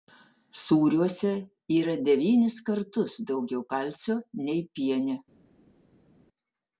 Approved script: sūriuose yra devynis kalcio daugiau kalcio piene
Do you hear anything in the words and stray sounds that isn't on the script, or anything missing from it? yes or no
yes